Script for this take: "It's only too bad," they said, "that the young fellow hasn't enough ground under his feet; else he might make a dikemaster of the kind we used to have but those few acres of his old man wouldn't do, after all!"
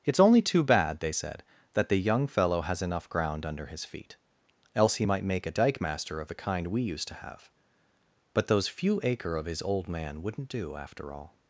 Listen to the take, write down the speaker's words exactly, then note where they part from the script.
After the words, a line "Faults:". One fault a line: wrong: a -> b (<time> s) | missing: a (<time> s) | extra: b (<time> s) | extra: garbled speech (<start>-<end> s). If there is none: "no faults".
"It's only too bad," they said, "that the young fellow has enough ground under his feet; else he might make a dikemaster of the kind we used to have but those few acre of his old man wouldn't do, after all!"
Faults:
wrong: hasn't -> has (2.6 s)
wrong: acres -> acre (9.0 s)